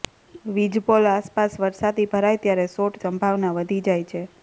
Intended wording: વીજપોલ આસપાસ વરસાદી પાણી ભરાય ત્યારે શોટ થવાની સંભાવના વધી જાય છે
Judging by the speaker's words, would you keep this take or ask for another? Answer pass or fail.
fail